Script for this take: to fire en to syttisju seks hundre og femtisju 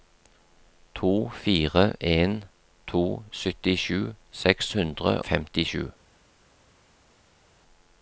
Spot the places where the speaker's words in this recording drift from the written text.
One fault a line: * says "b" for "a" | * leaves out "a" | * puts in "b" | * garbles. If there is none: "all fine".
* leaves out "og"